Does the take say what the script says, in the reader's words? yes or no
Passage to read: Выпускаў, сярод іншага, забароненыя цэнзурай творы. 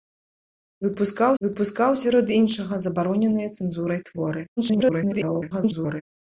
no